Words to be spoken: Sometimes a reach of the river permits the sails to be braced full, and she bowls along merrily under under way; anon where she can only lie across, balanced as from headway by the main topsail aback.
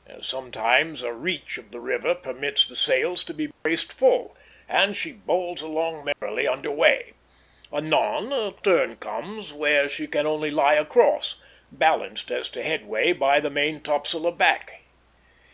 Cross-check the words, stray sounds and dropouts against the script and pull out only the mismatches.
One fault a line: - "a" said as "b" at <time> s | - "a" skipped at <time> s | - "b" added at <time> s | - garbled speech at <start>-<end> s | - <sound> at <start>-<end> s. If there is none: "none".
- dropout at 3.5-3.7 s
- dropout at 6.1-6.2 s
- "under" skipped at 6.7 s
- "a turn comes" added at 8.3 s
- "from" said as "to" at 12.5 s